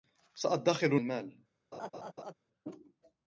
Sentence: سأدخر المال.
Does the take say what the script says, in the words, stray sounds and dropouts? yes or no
no